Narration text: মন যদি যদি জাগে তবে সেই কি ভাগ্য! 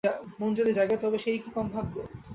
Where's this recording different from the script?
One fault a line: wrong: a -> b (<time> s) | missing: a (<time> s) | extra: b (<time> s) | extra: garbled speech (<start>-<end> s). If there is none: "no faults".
missing: যদি (0.7 s)
extra: কম (1.5 s)